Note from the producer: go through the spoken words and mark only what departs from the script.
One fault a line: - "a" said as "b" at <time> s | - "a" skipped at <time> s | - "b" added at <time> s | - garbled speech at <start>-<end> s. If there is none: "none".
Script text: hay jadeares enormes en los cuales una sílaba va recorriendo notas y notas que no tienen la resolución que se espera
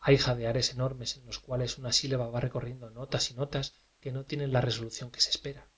none